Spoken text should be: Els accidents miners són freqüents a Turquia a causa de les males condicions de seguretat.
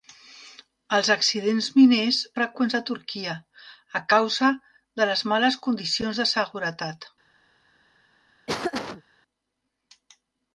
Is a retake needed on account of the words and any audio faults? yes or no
yes